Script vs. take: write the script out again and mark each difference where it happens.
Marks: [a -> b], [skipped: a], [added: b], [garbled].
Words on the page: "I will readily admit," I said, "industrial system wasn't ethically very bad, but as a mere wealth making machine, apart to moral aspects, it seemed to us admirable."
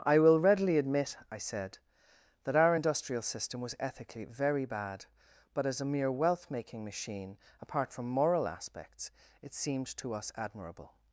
"I will readily admit," I said, [added: that our] "industrial system [wasn't -> was] ethically very bad, but as a mere wealth making machine, apart [to -> from] moral aspects, it seemed to us admirable."